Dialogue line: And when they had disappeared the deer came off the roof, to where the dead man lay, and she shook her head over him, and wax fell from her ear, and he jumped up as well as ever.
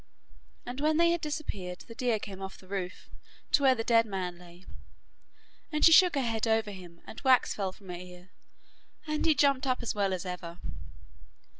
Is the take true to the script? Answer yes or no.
yes